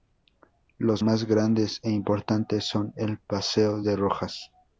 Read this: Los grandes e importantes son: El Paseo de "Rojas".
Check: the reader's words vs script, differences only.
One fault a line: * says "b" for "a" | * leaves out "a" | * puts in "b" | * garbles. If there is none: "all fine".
* puts in "más"